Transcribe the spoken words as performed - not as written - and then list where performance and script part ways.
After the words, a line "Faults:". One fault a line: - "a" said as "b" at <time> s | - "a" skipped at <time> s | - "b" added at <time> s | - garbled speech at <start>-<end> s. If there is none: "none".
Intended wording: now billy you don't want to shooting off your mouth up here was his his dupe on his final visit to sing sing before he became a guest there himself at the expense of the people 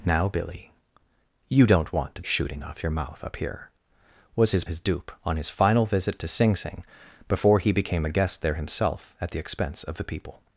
now billy you don't want to shooting off your mouth up here was his his dupe on his final visit to sing sing before he became a guest there himself at the expense of the people
Faults:
none